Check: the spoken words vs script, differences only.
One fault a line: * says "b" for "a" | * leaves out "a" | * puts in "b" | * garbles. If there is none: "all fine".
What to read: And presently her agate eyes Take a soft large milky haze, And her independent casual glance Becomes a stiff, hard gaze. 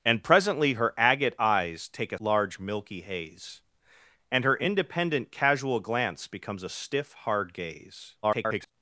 * leaves out "soft"
* garbles